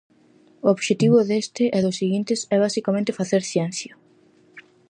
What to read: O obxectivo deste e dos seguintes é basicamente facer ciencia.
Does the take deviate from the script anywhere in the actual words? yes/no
no